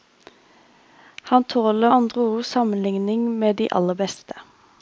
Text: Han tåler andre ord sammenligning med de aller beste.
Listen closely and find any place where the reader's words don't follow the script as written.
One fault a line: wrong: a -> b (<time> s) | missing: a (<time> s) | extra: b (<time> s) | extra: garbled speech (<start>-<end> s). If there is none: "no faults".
no faults